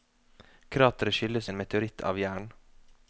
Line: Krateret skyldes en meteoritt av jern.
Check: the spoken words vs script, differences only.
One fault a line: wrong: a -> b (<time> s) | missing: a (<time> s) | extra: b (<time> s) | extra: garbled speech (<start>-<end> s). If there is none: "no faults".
no faults